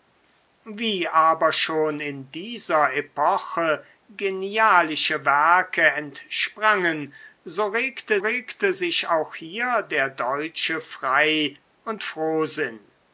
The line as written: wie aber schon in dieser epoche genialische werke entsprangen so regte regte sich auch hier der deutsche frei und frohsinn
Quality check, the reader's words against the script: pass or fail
pass